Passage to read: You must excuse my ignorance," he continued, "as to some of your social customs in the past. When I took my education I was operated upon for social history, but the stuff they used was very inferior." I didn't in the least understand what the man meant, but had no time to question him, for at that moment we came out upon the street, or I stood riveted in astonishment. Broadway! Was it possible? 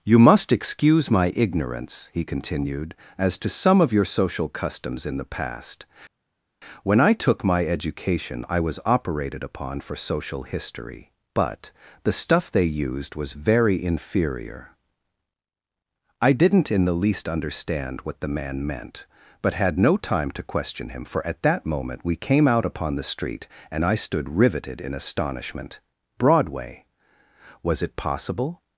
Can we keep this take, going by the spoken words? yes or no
no